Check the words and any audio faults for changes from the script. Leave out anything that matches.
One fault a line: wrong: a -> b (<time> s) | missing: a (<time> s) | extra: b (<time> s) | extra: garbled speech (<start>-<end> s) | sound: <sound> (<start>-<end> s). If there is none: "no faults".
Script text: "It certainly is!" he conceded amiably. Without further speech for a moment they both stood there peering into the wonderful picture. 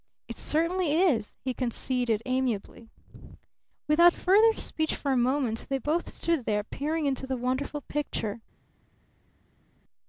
no faults